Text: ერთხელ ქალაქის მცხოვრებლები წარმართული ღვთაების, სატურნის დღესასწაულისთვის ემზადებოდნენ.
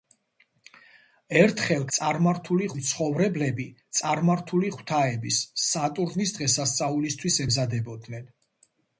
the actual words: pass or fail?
fail